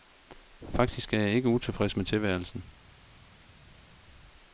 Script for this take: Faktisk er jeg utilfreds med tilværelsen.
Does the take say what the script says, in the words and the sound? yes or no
no